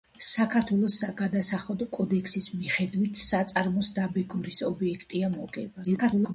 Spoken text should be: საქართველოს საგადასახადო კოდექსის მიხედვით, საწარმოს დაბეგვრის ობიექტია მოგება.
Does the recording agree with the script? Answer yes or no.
no